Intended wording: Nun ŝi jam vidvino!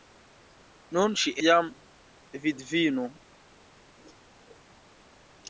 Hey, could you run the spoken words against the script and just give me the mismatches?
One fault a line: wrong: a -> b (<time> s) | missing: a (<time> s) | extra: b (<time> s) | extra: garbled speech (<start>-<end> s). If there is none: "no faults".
no faults